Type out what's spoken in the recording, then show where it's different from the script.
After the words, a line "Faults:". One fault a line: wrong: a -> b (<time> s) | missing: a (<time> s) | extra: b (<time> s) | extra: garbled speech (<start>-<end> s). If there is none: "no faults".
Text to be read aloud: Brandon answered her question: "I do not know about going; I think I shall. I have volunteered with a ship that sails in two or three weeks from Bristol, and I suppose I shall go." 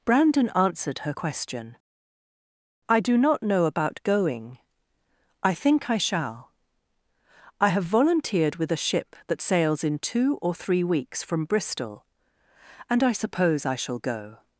Brandon answered her question: "I do not know about going; I think I shall. I have volunteered with a ship that sails in two or three weeks from Bristol, and I suppose I shall go."
Faults:
no faults